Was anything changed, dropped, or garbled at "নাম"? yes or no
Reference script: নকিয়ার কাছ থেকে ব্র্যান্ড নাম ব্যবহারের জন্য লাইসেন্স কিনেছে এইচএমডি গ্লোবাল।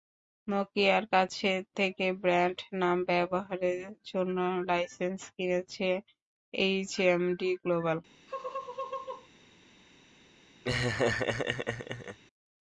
no